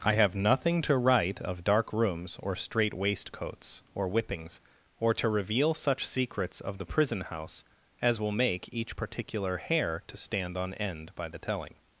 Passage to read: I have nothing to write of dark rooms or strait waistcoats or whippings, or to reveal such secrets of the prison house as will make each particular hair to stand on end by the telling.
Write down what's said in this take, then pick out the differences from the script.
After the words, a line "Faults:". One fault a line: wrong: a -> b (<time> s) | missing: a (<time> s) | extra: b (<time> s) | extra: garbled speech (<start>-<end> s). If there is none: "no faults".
I have nothing to write of dark rooms or strait waistcoats or whippings, or to reveal such secrets of the prison house as will make each particular hair to stand on end by the telling.
Faults:
no faults